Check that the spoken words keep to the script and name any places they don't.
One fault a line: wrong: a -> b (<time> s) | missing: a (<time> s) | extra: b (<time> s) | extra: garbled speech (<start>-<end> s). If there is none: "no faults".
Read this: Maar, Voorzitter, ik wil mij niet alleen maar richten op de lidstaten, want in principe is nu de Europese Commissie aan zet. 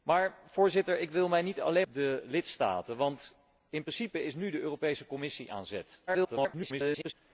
missing: maar richten op (1.9 s)
extra: garbled speech (6.1-7.1 s)